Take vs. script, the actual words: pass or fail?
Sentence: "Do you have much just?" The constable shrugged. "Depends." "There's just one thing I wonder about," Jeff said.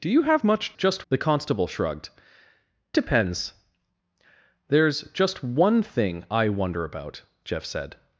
pass